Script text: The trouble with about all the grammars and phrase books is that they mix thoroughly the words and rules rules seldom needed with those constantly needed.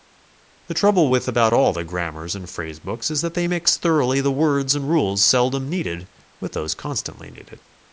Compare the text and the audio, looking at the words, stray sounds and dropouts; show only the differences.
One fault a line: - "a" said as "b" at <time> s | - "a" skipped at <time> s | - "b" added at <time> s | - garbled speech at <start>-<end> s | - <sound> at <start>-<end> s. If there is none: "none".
- "rules" skipped at 5.2 s